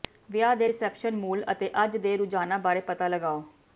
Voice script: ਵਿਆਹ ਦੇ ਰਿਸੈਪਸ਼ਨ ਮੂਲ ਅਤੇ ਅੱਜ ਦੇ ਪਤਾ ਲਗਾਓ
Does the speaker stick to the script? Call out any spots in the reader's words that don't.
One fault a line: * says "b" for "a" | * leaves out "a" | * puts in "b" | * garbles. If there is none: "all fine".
* puts in "ਰੁਝਾਨਾਂ ਬਾਰੇ"